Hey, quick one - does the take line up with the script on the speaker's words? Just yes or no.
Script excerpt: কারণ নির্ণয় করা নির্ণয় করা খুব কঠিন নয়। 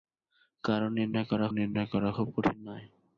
yes